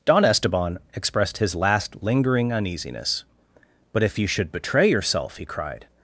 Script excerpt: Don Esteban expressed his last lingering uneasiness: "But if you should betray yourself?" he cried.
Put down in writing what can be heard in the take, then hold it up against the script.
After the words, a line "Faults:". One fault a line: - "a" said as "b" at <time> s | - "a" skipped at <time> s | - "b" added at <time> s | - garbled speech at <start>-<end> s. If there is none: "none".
Don Esteban expressed his last lingering uneasiness: "But if you should betray yourself?" he cried.
Faults:
none